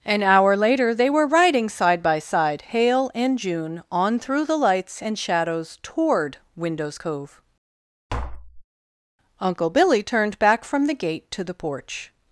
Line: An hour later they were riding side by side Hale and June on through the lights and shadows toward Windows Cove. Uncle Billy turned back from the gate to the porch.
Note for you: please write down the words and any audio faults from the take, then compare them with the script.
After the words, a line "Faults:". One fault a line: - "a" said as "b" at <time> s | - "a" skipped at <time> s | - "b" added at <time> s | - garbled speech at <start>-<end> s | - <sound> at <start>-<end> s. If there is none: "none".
An hour later they were riding side by side Hale and June on through the lights and shadows toward Windows Cove. Uncle Billy turned back from the gate to the porch.
Faults:
- tap at 8.1-8.6 s